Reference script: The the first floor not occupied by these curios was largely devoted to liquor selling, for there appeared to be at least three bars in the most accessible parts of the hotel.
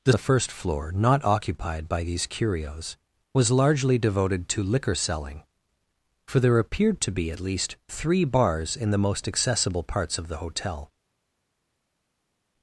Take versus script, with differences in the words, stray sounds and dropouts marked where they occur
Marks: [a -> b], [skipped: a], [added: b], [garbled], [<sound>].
The the first floor not occupied by these curios was largely devoted to liquor selling, for there appeared to be at least three bars in the most accessible parts of the hotel.